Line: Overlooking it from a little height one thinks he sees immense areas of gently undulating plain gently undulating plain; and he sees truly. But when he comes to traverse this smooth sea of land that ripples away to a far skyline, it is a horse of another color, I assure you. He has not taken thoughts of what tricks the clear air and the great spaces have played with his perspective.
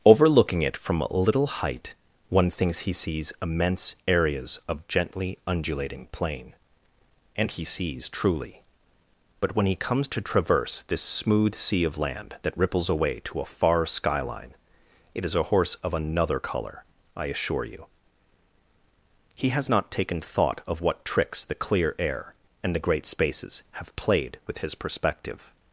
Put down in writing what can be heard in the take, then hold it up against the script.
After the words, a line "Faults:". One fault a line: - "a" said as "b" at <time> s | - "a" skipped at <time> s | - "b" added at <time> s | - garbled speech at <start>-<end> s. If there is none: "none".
Overlooking it from a little height one thinks he sees immense areas of gently undulating plain; and he sees truly. But when he comes to traverse this smooth sea of land that ripples away to a far skyline, it is a horse of another color, I assure you. He has not taken thought of what tricks the clear air and the great spaces have played with his perspective.
Faults:
- "gently undulating plain" skipped at 6.5 s
- "thoughts" said as "thought" at 20.2 s